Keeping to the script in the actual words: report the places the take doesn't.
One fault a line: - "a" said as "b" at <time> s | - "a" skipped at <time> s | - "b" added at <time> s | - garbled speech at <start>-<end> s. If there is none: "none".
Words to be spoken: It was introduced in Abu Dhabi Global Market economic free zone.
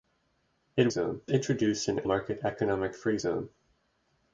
- "was" said as "zone" at 0.9 s
- "Abu Dhabi Global" skipped at 2.0 s